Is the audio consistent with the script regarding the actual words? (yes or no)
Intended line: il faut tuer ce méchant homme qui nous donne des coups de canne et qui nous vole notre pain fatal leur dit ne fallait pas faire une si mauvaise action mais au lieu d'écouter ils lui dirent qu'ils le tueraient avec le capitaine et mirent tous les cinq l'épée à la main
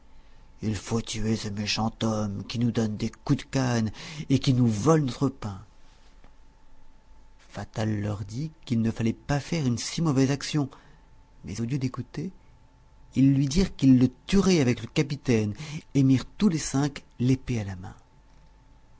no